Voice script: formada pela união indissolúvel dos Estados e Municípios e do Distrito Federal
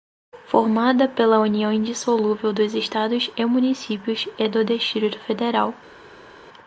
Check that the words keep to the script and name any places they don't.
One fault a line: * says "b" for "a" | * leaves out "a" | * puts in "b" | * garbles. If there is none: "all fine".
all fine